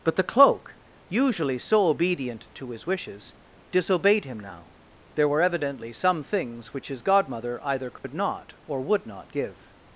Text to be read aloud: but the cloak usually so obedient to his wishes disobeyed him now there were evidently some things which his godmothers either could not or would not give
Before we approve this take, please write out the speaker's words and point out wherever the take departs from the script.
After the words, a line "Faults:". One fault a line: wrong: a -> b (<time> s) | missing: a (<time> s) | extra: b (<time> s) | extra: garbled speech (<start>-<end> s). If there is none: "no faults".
but the cloak usually so obedient to his wishes disobeyed him now there were evidently some things which his godmother either could not or would not give
Faults:
wrong: godmothers -> godmother (7.0 s)